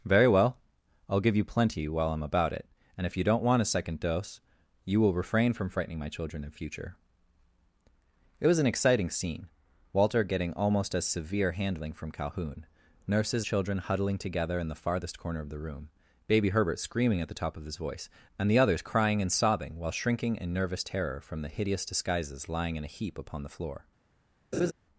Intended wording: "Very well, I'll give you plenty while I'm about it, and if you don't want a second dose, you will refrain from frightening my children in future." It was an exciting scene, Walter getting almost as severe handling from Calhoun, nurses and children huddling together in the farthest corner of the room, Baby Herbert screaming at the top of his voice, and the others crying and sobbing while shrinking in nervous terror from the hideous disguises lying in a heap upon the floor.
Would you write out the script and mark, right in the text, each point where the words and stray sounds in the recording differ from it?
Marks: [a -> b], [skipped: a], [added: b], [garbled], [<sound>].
"Very well, I'll give you plenty while I'm about it, and if you don't want a second dose, you will refrain from frightening my children in future." It was an exciting scene, Walter getting almost as severe handling from Calhoun, nurses [skipped: and] children huddling together in the farthest corner of the room, Baby Herbert screaming at the top of his voice, and the others crying and sobbing while shrinking in nervous terror from the hideous disguises lying in a heap upon the floor. [laugh]